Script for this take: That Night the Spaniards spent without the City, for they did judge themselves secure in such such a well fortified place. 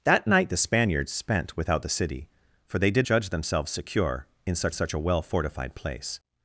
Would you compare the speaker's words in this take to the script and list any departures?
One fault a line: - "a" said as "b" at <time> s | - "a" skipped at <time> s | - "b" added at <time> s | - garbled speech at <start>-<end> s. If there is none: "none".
none